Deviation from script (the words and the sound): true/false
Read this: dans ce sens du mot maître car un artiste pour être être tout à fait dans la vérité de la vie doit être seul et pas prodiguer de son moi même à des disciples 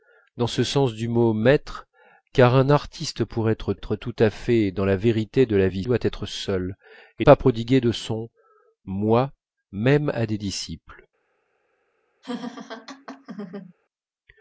true